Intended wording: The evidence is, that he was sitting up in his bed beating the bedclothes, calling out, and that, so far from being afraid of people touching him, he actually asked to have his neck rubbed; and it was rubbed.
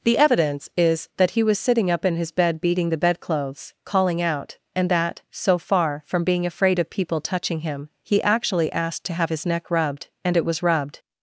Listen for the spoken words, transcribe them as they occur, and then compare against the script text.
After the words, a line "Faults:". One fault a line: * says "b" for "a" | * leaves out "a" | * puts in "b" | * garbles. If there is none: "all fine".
The evidence is, that he was sitting up in his bed beating the bedclothes, calling out, and that, so far from being afraid of people touching him, he actually asked to have his neck rubbed; and it was rubbed.
Faults:
all fine